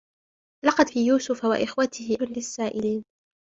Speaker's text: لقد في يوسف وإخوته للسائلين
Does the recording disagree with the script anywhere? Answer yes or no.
no